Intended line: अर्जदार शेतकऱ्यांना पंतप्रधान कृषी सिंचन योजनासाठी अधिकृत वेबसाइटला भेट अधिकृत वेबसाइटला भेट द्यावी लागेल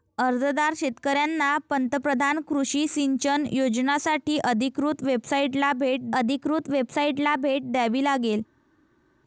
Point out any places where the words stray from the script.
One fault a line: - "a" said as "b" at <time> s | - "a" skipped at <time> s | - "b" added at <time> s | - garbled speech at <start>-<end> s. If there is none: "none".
none